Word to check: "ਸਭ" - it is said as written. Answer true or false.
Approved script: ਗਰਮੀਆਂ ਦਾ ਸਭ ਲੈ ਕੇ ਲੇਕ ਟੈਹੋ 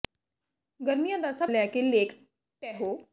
true